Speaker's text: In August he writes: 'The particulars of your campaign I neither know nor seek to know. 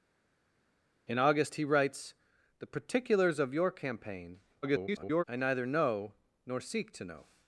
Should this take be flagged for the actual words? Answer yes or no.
yes